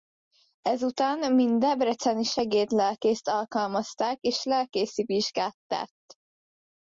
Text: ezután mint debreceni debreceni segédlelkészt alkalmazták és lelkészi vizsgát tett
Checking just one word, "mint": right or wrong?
right